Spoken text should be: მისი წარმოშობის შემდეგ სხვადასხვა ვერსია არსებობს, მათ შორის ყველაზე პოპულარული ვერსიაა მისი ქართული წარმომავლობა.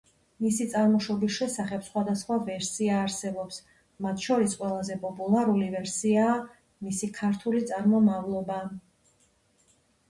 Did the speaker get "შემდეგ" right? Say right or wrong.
wrong